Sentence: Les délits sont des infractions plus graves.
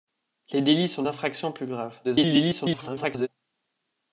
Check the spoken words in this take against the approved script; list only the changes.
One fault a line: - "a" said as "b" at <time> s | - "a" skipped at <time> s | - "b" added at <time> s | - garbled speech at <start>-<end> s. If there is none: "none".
- "des" skipped at 1.0 s
- garbled speech at 2.0-3.3 s